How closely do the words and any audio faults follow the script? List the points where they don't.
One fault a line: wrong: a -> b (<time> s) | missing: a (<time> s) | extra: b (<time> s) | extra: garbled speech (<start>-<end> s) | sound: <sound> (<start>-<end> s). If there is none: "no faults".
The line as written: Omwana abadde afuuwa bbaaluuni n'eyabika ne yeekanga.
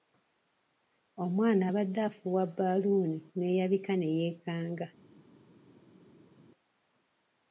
no faults